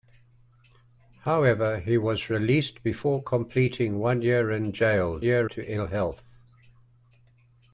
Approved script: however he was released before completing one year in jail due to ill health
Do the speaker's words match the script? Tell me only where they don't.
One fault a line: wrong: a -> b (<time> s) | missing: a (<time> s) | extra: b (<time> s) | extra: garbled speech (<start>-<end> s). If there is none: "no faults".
wrong: due -> year (5.2 s)